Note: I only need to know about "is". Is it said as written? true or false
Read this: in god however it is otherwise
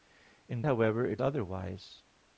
false